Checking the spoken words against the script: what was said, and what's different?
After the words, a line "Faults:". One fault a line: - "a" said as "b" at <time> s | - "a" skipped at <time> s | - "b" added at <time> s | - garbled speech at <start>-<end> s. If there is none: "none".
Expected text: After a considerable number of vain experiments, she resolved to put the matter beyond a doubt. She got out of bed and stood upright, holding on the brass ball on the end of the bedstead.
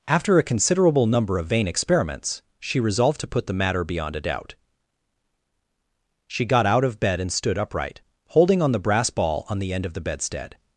After a considerable number of vain experiments, she resolved to put the matter beyond a doubt. She got out of bed and stood upright, holding on the brass ball on the end of the bedstead.
Faults:
none